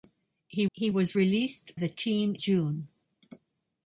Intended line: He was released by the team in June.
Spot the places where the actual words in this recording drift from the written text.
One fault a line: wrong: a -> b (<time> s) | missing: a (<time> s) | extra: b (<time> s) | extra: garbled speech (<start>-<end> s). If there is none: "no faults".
extra: he (0.7 s)
missing: by (1.8 s)
missing: in (2.4 s)